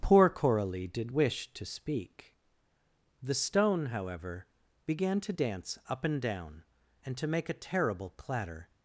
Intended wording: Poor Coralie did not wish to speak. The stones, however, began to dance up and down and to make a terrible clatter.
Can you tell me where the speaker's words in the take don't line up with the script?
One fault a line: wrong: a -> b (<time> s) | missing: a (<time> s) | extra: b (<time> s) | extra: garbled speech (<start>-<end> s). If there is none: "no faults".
missing: not (1.1 s)
wrong: stones -> stone (3.3 s)